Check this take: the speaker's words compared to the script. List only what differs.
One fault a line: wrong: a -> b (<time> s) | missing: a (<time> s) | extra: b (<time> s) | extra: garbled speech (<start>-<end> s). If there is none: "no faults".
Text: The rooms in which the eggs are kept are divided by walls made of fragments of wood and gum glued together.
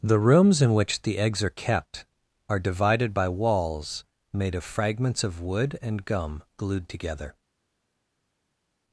no faults